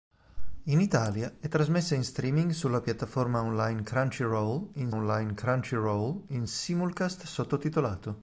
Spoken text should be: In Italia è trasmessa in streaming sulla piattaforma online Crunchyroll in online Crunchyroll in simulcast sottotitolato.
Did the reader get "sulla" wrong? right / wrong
right